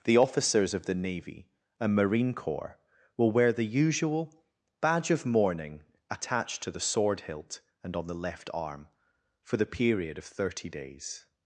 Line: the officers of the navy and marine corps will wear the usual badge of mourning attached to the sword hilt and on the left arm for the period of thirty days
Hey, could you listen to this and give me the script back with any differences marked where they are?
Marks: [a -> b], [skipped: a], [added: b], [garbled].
the officers of the navy and marine corps will wear the usual badge of mourning attached to the sword hilt and on the left arm for the period of thirty days